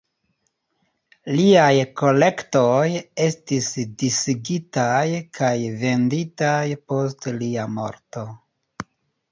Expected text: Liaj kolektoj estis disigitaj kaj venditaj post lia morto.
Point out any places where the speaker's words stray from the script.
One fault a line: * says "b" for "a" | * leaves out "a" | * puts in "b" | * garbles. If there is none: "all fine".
all fine